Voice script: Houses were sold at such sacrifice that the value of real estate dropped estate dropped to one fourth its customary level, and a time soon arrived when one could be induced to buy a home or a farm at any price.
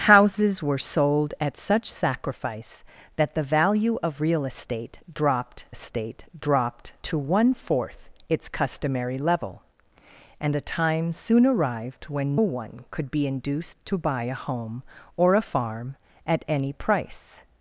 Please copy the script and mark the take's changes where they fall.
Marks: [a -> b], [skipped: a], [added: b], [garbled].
Houses were sold at such sacrifice that the value of real estate dropped estate dropped to one fourth its customary level, and a time soon arrived when one could be induced to buy a home or a farm at any price.